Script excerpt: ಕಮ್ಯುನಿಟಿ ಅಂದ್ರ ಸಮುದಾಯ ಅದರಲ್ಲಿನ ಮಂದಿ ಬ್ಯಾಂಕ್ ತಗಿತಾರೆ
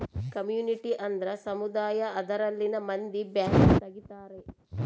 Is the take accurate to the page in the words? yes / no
yes